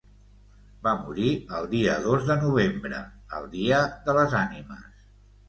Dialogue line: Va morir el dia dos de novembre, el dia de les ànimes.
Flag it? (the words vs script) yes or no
no